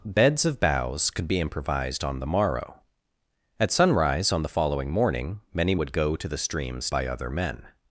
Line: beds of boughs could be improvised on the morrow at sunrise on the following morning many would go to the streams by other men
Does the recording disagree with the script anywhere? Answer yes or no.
no